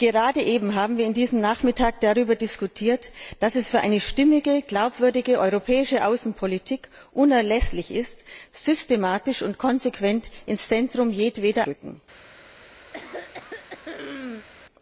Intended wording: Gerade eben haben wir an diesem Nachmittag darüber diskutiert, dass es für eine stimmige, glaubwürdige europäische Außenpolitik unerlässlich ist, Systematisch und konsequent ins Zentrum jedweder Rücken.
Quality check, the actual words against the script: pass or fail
pass